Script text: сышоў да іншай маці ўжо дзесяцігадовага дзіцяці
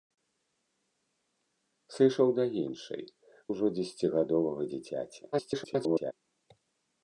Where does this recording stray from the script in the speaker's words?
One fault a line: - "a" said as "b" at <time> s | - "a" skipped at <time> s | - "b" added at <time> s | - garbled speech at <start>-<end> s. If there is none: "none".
- "маці" skipped at 3.0 s
- garbled speech at 5.3-6.1 s